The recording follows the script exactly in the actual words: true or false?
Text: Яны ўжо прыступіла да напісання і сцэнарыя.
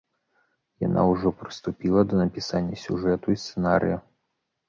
false